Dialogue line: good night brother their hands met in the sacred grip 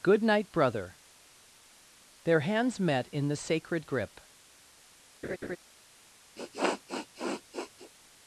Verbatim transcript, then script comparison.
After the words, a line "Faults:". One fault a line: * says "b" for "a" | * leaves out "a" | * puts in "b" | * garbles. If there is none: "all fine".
good night brother their hands met in the sacred grip
Faults:
all fine